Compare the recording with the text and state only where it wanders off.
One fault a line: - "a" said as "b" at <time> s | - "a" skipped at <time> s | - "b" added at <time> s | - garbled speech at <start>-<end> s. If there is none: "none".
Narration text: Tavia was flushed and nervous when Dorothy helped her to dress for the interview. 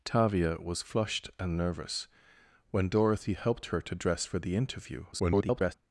- garbled speech at 5.1-5.7 s